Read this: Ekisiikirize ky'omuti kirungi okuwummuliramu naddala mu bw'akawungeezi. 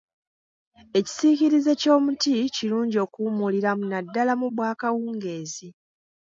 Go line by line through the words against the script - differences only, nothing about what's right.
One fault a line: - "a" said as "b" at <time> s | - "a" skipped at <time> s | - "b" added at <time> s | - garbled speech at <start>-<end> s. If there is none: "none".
none